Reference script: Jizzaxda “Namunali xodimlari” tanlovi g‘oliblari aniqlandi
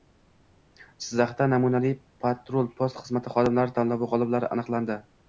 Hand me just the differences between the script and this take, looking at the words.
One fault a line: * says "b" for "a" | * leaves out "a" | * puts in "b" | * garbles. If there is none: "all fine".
* puts in "patrul post xizmati"